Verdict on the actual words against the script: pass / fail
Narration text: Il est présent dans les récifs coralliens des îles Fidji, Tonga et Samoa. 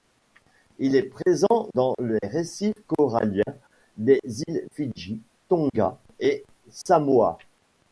pass